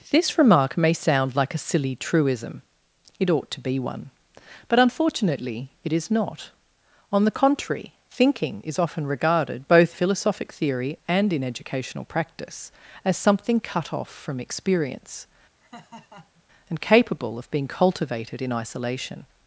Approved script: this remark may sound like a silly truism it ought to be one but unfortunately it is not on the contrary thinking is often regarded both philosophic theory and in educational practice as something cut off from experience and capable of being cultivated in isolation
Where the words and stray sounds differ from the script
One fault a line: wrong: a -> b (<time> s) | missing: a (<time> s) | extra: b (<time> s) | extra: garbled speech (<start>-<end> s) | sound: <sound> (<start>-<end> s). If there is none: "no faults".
sound: laugh (15.6-16.4 s)